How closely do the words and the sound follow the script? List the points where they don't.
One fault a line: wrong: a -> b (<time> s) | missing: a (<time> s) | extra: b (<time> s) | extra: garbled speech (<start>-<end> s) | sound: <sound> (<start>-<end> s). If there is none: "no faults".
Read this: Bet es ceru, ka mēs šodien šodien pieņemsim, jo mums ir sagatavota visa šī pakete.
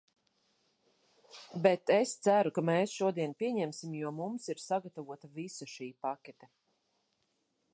missing: šodien (3.3 s)